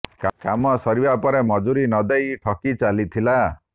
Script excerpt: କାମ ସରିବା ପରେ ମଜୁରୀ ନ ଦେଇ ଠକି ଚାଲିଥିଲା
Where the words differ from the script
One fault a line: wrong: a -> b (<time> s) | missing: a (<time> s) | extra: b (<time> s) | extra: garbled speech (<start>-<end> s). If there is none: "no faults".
no faults